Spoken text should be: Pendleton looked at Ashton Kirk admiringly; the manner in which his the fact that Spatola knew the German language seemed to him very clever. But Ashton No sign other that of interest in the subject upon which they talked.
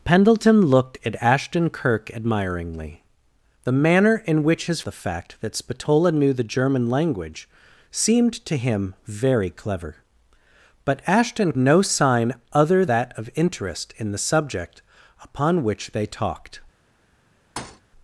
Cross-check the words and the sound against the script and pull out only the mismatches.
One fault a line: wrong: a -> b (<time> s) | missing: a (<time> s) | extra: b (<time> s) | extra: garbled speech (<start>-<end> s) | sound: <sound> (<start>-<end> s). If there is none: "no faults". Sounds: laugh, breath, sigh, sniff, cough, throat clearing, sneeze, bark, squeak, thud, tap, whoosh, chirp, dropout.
sound: thud (17.6-17.8 s)